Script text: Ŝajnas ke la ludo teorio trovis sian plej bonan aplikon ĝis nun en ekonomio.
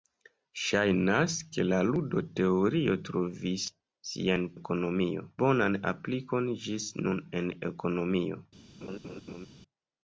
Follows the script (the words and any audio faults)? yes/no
no